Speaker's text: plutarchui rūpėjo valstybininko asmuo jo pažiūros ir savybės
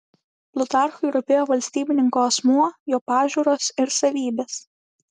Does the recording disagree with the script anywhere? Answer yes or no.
no